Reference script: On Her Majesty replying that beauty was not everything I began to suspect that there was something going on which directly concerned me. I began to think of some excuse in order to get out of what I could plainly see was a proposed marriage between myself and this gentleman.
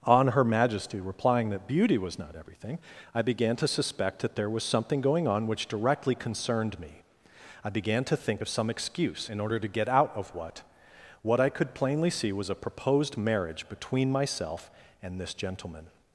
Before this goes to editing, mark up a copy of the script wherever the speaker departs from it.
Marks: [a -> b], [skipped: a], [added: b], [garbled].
On Her Majesty replying that beauty was not everything I began to suspect that there was something going on which directly concerned me. I began to think of some excuse in order to get out of what [added: what] I could plainly see was a proposed marriage between myself and this gentleman.